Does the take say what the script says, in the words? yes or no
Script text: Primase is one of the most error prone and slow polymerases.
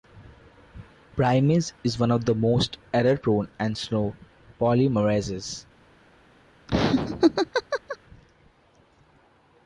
yes